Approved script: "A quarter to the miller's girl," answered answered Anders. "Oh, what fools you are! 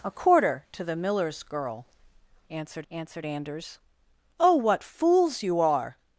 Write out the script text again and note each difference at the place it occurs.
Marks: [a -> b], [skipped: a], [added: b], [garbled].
"A quarter to the miller's girl," answered answered Anders. "Oh, what fools you are!